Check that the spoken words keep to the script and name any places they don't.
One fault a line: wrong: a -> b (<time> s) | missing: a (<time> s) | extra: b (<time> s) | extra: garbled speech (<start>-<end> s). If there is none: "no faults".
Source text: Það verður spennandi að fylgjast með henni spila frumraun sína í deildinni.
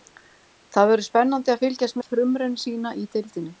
missing: með henni spila (2.0 s)